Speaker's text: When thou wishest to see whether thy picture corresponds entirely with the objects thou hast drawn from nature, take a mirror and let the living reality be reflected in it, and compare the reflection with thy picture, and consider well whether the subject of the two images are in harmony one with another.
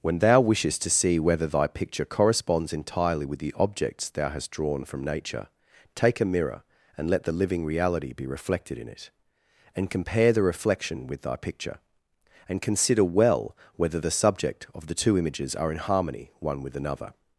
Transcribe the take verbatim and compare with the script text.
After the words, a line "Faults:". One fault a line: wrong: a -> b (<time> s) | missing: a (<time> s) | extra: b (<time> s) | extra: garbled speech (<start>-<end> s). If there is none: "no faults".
When thou wishest to see whether thy picture corresponds entirely with the objects thou hast drawn from nature, take a mirror and let the living reality be reflected in it, and compare the reflection with thy picture, and consider well whether the subject of the two images are in harmony one with another.
Faults:
no faults